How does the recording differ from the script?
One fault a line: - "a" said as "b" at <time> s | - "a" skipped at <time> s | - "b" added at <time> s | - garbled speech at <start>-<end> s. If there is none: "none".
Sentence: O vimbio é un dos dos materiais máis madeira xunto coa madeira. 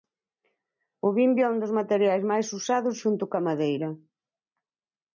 - "dos" skipped at 1.8 s
- "madeira" said as "usados" at 2.6 s